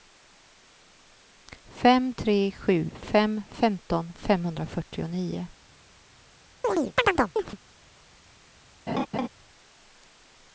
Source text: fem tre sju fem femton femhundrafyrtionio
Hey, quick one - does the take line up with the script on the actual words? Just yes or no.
yes